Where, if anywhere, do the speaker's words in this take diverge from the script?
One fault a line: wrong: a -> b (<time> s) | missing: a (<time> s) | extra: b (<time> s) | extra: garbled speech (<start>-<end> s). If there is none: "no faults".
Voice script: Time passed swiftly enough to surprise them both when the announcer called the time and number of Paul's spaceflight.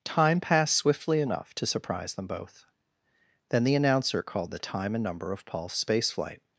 wrong: when -> then (3.5 s)